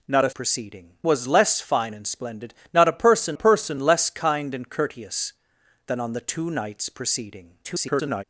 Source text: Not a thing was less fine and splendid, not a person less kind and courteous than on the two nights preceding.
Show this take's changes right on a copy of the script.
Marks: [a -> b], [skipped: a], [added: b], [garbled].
Not a [thing -> preceding] was less fine and splendid, not a person [added: person] less kind and courteous than on the two nights preceding. [garbled]